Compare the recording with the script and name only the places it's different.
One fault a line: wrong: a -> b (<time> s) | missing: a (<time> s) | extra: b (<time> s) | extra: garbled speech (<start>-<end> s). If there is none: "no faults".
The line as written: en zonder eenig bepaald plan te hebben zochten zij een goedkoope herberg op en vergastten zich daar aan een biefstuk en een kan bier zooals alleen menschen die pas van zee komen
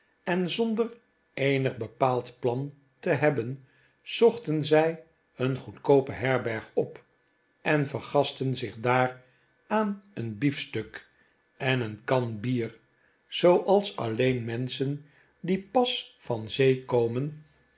no faults